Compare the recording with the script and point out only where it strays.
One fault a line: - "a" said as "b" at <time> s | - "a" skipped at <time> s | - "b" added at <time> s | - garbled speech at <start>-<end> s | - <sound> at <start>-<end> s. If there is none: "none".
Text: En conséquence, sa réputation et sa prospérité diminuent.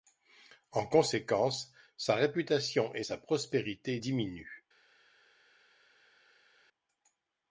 none